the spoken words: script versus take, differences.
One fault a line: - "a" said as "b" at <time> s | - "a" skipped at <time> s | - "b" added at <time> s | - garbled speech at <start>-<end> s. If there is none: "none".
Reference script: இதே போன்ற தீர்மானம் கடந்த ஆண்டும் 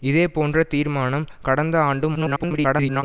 - garbled speech at 2.1-3.0 s